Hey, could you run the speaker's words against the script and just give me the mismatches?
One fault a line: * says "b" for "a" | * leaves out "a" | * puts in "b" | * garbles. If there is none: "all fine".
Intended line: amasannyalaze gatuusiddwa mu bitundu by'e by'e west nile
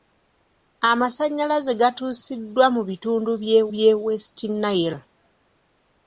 all fine